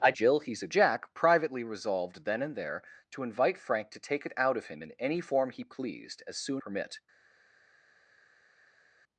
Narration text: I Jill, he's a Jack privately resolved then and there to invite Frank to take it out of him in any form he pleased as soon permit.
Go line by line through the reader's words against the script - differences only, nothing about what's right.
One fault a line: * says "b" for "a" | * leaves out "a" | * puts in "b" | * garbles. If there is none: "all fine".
all fine